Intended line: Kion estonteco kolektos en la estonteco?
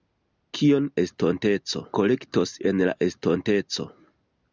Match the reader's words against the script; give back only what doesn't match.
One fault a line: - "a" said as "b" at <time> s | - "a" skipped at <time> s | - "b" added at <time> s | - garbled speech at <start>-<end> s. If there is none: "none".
none